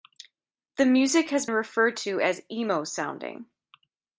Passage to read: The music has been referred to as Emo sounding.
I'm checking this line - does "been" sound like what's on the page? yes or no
no